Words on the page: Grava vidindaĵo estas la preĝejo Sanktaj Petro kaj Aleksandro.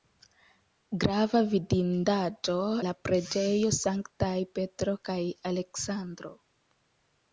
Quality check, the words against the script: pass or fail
fail